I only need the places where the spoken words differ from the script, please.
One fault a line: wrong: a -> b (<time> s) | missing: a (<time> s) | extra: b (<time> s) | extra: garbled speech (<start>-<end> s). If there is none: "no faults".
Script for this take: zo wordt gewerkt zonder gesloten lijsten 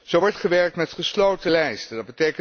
wrong: zonder -> met (0.8 s)